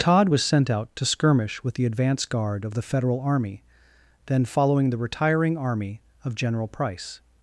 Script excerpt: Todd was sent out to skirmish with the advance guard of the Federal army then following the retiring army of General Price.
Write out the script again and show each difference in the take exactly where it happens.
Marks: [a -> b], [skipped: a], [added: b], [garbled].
Todd was sent out to skirmish with the advance guard of the Federal army then following the retiring army of General Price.